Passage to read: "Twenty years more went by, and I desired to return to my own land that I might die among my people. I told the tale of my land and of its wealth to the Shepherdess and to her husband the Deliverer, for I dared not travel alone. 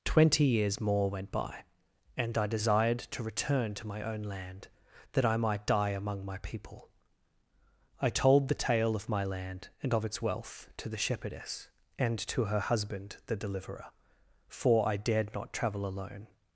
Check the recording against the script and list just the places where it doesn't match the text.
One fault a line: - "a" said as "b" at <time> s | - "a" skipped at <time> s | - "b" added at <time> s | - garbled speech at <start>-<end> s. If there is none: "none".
none